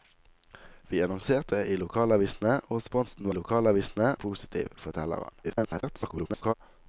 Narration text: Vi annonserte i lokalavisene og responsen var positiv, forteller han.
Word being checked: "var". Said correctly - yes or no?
no